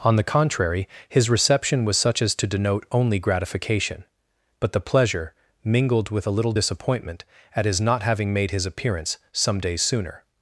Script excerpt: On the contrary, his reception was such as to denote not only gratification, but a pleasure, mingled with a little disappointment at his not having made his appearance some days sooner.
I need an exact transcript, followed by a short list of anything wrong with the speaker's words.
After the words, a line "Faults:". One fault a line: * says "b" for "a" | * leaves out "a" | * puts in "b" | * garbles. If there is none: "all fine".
On the contrary, his reception was such as to denote only gratification, but the pleasure, mingled with a little disappointment at his not having made his appearance some days sooner.
Faults:
* leaves out "not"
* says "the" for "a"